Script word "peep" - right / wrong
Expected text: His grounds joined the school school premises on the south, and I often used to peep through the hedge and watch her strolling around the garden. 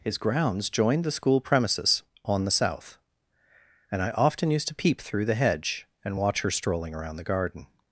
right